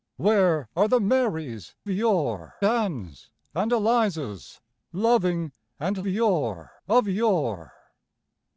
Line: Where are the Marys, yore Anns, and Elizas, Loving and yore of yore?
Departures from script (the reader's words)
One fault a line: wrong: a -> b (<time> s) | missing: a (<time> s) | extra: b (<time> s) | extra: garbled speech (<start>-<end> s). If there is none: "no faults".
no faults